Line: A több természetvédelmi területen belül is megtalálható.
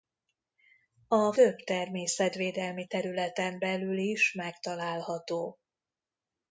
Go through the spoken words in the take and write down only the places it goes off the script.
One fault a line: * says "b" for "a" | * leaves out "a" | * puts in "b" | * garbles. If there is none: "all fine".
all fine